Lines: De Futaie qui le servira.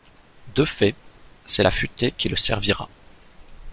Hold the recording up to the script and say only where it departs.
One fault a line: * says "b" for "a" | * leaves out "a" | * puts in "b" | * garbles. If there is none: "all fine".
* puts in "fait c'est La"